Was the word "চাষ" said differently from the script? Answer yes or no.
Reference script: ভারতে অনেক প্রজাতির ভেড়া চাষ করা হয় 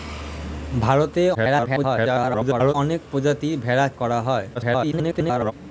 yes